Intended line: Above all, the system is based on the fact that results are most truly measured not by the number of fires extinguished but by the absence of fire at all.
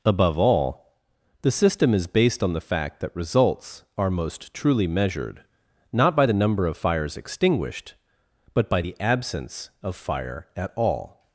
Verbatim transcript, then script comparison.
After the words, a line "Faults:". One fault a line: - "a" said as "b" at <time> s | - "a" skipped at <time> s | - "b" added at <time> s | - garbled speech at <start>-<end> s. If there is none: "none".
Above all, the system is based on the fact that results are most truly measured not by the number of fires extinguished but by the absence of fire at all.
Faults:
none